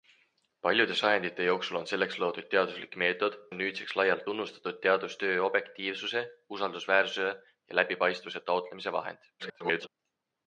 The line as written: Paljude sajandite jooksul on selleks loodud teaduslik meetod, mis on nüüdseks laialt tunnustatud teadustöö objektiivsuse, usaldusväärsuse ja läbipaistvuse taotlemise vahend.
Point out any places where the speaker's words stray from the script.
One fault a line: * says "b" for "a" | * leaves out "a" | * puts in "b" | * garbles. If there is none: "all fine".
* leaves out "mis"
* garbles